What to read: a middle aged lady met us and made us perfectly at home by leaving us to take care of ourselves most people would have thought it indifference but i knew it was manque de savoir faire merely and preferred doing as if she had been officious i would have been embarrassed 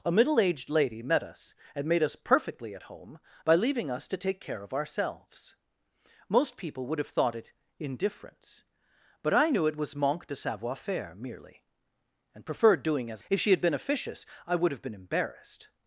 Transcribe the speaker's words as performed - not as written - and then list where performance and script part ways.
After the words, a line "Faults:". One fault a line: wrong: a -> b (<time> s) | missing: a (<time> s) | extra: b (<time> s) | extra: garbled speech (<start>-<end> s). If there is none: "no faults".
a middle aged lady met us and made us perfectly at home by leaving us to take care of ourselves most people would have thought it indifference but i knew it was manque de savoir faire merely and preferred doing as if she had been officious i would have been embarrassed
Faults:
no faults